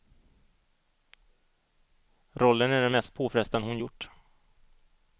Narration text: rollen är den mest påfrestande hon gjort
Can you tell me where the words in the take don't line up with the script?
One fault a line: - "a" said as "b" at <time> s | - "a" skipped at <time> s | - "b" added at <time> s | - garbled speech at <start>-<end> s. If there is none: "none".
none